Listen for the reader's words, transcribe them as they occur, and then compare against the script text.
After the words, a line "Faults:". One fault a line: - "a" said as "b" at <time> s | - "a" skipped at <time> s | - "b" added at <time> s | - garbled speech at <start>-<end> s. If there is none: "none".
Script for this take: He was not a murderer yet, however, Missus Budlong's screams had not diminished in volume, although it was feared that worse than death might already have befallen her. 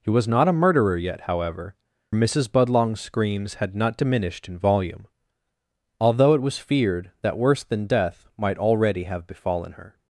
He was not a murderer yet, however, Missus Budlong's screams had not diminished in volume, although it was feared that worse than death might already have befallen her.
Faults:
none